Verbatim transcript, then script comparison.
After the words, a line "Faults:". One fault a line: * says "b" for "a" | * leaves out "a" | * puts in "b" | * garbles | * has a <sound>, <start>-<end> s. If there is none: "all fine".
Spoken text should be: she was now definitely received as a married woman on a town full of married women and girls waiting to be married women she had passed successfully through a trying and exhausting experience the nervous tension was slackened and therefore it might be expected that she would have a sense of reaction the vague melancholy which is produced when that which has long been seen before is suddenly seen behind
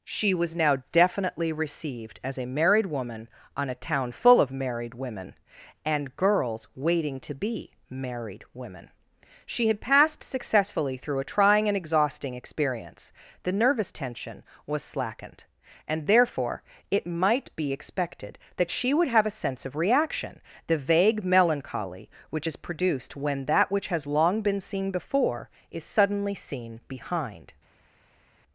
she was now definitely received as a married woman on a town full of married women and girls waiting to be married women she had passed successfully through a trying and exhausting experience the nervous tension was slackened and therefore it might be expected that she would have a sense of reaction the vague melancholy which is produced when that which has long been seen before is suddenly seen behind
Faults:
all fine